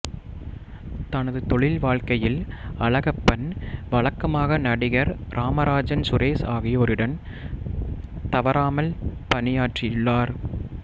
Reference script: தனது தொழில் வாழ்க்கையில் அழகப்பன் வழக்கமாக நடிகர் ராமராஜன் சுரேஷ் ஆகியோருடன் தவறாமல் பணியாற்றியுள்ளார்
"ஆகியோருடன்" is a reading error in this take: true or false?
false